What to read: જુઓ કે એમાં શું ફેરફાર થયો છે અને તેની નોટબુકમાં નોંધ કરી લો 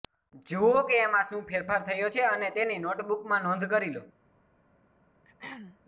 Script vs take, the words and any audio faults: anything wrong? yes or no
yes